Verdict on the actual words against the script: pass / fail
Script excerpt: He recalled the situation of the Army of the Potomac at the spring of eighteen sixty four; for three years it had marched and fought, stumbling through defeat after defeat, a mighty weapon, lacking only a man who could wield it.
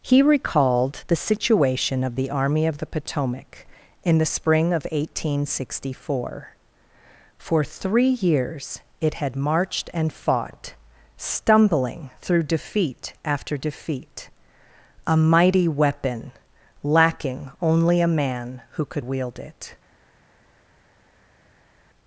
fail